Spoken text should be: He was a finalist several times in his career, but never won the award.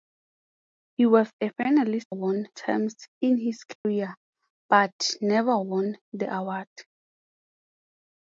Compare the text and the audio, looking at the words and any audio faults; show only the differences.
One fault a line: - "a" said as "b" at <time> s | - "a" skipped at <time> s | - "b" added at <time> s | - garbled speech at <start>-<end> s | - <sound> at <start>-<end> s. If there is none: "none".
- "several" said as "won" at 2.1 s
- dropout at 3.8-3.9 s